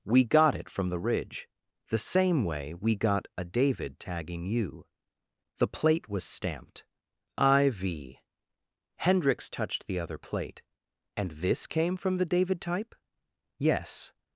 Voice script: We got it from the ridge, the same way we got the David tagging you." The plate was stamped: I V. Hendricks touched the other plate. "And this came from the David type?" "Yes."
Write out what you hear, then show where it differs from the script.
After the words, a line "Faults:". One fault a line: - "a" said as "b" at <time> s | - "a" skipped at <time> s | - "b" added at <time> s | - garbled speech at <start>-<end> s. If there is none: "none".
We got it from the ridge, the same way we got a David tagging you." The plate was stamped: I V. Hendricks touched the other plate. "And this came from the David type?" "Yes."
Faults:
- "the" said as "a" at 3.4 s